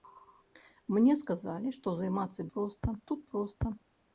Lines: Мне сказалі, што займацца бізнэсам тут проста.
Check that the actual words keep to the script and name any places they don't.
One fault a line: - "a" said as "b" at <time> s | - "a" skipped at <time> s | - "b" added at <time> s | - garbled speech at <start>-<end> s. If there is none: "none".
- "бізнэсам" said as "проста" at 2.6 s